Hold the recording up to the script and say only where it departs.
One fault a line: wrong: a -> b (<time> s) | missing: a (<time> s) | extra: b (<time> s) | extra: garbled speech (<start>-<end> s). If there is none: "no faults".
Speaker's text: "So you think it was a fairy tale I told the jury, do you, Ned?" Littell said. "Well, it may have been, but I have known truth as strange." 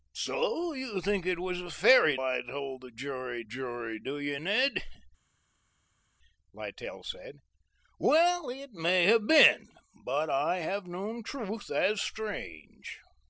missing: tale (2.2 s)
extra: jury (3.4 s)